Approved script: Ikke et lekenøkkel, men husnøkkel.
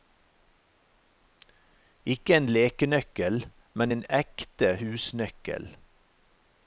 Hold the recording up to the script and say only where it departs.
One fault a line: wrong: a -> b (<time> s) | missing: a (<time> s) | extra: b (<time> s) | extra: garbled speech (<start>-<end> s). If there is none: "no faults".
wrong: et -> en (2.4 s)
extra: en ekte (3.9 s)